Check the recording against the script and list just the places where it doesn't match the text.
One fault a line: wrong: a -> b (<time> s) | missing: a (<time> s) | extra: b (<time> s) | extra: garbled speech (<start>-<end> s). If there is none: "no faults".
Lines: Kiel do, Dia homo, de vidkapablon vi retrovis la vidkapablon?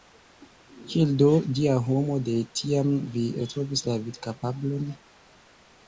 wrong: vidkapablon -> tiam (2.6 s)